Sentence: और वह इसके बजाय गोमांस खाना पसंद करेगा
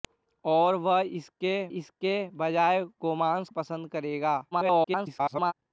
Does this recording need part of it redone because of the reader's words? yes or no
yes